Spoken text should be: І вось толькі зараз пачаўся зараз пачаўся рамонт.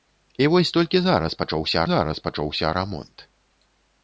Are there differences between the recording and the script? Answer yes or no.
no